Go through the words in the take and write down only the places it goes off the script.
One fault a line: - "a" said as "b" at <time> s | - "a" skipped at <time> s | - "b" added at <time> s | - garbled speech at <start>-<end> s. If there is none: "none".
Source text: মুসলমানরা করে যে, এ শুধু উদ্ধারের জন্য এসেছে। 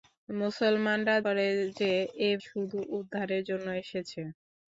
none